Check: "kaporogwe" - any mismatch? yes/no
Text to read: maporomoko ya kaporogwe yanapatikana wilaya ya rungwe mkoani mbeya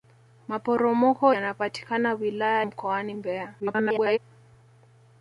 yes